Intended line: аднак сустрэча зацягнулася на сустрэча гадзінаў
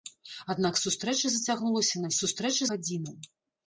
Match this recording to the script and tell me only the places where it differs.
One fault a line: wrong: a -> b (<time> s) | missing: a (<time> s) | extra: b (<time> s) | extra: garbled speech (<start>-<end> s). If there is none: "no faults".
no faults